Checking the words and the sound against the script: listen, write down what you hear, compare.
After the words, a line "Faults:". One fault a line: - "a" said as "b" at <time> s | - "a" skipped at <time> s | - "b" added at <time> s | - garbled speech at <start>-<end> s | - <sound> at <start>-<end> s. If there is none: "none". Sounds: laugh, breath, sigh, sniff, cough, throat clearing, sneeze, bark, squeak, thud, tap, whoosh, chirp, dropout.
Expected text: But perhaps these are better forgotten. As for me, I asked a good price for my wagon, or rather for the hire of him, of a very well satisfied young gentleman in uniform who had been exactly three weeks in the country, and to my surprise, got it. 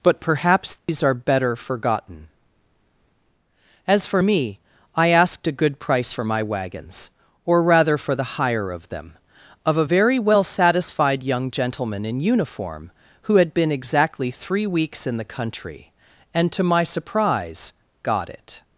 But perhaps these are better forgotten. As for me, I asked a good price for my wagons, or rather for the hire of them, of a very well satisfied young gentleman in uniform who had been exactly three weeks in the country, and to my surprise, got it.
Faults:
- dropout at 0.8-0.9 s
- "wagon" said as "wagons" at 6.4 s
- "him" said as "them" at 8.9 s